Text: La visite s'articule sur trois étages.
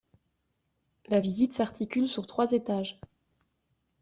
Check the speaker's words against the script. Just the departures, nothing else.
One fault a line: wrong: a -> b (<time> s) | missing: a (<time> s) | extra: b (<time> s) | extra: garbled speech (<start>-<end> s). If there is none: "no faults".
no faults